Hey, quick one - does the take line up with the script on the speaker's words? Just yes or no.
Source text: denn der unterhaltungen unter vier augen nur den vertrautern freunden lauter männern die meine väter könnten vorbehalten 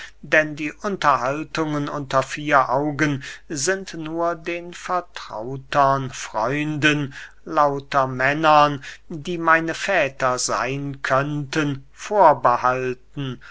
no